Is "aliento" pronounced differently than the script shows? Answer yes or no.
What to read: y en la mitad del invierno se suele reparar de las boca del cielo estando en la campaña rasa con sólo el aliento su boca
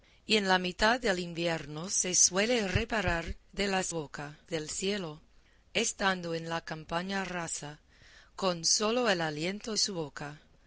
no